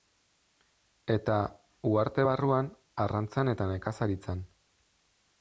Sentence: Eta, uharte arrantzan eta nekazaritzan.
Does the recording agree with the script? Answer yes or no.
no